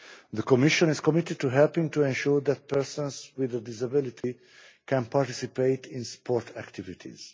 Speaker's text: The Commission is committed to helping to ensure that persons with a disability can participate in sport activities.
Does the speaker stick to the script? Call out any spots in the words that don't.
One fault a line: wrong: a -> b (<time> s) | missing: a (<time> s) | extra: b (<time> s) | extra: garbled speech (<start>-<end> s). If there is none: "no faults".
no faults